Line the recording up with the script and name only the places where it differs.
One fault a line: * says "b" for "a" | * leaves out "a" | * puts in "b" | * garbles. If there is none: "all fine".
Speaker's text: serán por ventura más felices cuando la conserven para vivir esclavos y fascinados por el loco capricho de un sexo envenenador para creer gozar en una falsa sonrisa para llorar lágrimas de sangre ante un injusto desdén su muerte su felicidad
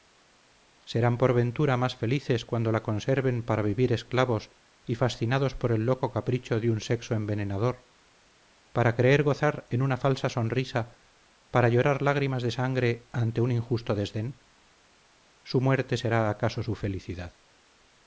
* puts in "será acaso"